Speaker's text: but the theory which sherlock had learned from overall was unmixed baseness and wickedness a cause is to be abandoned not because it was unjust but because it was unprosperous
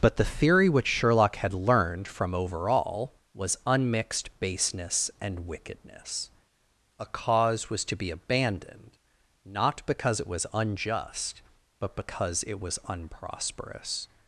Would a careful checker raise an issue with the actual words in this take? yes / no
yes